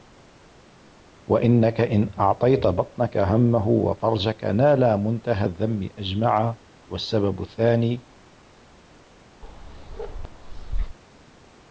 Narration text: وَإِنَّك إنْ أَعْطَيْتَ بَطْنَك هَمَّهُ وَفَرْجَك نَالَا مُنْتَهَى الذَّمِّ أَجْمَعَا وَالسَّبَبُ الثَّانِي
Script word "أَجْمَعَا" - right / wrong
right